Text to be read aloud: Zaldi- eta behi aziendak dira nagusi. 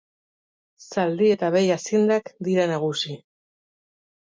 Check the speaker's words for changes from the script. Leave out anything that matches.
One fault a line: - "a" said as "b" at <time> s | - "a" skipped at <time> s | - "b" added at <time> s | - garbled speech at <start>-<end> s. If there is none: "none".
none